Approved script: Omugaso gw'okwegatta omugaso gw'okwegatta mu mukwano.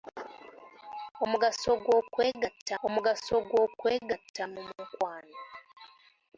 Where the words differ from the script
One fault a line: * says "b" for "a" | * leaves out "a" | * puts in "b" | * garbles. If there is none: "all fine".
all fine